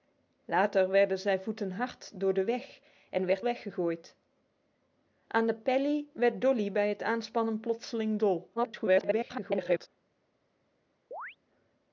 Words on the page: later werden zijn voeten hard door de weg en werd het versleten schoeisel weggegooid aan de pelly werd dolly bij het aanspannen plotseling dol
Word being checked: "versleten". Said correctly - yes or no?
no